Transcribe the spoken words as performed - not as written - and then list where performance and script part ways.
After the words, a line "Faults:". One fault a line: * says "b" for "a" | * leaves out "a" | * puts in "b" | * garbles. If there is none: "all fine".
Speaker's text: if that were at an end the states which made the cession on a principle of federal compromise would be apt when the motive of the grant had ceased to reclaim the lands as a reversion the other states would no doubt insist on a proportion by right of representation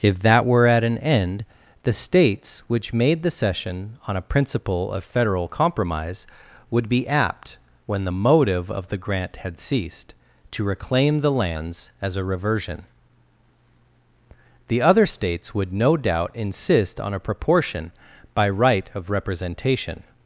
if that were at an end the states which made the cession on a principle of federal compromise would be apt when the motive of the grant had ceased to reclaim the lands as a reversion the other states would no doubt insist on a proportion by right of representation
Faults:
all fine